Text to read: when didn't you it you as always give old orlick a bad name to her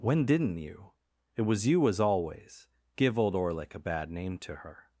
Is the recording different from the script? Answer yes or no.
yes